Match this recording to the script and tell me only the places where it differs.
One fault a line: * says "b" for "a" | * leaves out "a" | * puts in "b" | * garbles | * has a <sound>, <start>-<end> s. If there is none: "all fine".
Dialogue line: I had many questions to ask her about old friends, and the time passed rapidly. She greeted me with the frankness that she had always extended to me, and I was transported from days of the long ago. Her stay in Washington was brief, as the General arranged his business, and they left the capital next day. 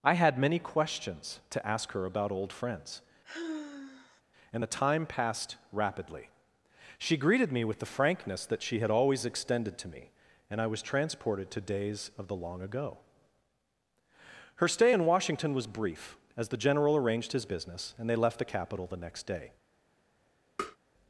* has a sigh, 3.2-4.2 s
* says "to" for "from"
* puts in "the"
* has a tap, 20.6-20.8 s